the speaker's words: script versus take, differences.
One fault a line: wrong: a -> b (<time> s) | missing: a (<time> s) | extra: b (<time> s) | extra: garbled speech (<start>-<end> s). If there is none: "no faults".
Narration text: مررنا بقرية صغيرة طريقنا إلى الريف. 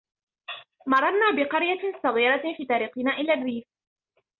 extra: في (2.6 s)